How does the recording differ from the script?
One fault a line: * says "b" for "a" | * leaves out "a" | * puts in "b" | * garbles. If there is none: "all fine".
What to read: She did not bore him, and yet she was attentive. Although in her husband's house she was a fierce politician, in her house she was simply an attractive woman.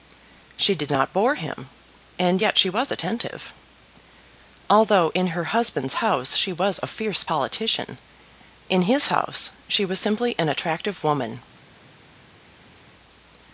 * says "his" for "her"